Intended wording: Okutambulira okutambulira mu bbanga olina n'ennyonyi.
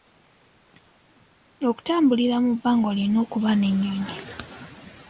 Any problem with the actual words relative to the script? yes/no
yes